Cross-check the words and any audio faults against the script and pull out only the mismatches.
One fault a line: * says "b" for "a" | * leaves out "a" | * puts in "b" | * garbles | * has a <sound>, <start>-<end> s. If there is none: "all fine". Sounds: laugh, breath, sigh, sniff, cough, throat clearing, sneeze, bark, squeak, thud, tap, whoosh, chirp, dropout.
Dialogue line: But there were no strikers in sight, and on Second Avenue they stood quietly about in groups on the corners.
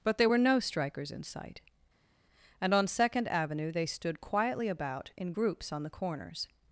all fine